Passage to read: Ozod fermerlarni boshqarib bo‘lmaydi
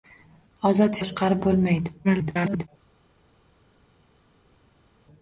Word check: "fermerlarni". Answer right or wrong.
wrong